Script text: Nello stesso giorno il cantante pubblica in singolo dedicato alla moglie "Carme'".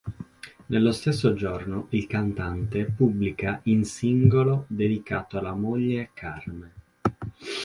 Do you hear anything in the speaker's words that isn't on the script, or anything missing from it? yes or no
no